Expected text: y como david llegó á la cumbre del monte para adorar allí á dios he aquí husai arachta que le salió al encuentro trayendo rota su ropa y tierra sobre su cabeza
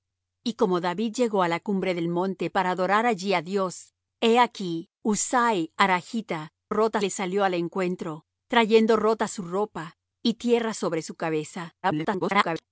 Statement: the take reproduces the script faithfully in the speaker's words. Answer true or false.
false